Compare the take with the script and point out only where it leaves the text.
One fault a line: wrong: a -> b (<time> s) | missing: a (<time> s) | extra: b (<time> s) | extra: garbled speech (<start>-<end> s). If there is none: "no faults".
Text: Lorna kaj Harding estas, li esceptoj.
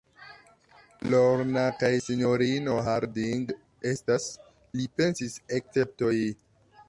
extra: sinjorino (2.0 s)
extra: pensis (5.0 s)